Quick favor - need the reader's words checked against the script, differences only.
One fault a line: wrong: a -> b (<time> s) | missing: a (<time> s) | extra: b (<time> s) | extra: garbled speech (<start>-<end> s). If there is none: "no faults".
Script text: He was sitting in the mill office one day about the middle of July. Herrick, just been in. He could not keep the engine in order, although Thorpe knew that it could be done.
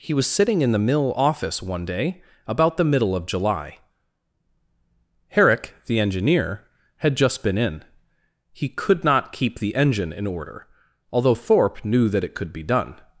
extra: the engineer had (5.8 s)